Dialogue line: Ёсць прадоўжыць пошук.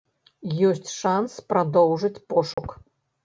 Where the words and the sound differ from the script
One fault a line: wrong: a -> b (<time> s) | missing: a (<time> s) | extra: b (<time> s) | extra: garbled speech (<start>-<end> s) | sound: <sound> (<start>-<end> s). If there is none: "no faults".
extra: шанс (1.0 s)
sound: dropout (2.5-2.6 s)